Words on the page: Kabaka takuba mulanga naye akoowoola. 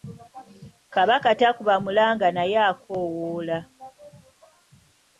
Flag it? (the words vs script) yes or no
no